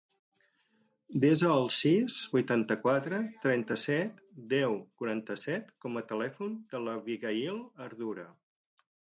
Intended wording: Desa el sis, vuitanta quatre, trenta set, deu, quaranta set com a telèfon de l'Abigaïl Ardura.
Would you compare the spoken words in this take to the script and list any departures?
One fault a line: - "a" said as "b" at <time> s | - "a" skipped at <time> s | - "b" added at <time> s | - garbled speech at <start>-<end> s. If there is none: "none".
none